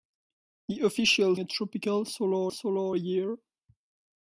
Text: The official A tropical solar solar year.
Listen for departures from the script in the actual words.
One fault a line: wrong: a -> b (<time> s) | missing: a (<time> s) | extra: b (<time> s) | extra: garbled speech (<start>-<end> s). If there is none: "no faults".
no faults